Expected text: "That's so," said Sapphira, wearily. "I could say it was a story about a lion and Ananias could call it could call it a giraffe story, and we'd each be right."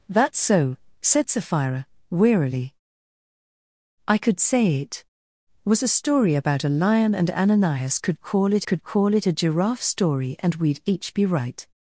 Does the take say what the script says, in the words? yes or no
yes